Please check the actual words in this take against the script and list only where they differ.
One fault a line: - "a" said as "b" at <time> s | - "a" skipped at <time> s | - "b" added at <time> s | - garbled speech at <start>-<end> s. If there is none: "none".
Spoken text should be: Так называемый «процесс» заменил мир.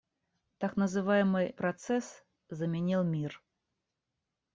none